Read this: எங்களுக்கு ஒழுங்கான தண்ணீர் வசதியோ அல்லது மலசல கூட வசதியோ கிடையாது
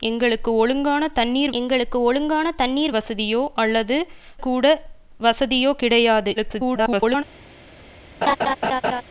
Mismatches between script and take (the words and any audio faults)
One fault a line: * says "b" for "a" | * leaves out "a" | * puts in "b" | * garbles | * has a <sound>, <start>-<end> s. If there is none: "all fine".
* puts in "எங்களுக்கு ஒழுங்கான தண்ணீர்"
* leaves out "மலசல"
* garbles
* has a laugh, 8.2-9.0 s